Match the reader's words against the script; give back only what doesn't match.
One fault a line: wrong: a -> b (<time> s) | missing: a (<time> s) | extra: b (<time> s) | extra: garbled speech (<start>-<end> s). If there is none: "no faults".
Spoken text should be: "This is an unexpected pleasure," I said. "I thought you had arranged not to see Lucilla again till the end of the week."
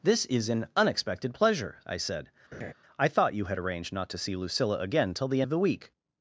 missing: end (5.4 s)